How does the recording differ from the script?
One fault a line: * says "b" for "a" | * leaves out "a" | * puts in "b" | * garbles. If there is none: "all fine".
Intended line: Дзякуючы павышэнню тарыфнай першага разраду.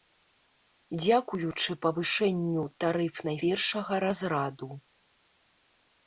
all fine